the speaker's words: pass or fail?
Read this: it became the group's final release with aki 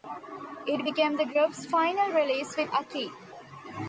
pass